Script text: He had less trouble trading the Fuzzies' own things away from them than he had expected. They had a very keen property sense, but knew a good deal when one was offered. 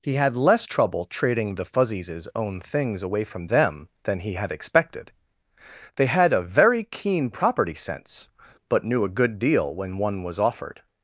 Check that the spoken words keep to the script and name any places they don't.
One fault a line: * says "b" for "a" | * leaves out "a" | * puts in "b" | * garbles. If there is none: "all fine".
all fine